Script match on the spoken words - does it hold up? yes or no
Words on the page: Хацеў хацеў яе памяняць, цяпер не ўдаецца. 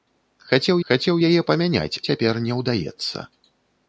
yes